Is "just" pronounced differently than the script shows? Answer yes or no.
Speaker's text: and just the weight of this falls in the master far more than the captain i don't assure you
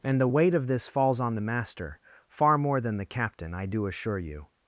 yes